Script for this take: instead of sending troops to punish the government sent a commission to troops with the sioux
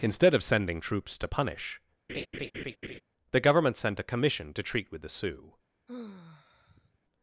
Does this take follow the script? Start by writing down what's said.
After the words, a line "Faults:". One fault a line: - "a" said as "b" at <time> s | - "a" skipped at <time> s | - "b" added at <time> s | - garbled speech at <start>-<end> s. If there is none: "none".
instead of sending troops to punish the government sent a commission to treat with the sioux
Faults:
- "troops" said as "treat" at 4.6 s